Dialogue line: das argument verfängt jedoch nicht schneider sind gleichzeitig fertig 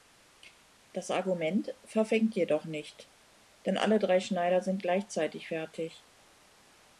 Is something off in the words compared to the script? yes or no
yes